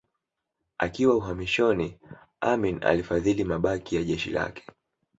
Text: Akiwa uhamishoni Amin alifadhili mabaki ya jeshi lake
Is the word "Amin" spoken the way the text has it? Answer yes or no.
yes